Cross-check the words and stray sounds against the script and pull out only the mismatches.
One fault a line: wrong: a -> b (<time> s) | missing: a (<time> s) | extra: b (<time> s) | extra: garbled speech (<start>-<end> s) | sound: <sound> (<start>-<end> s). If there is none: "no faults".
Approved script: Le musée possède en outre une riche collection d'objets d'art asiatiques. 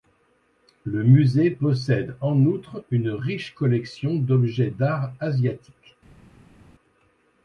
no faults